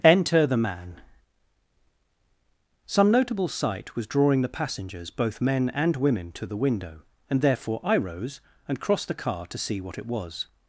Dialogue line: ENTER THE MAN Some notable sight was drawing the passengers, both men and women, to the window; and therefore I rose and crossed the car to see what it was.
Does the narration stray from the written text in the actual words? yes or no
no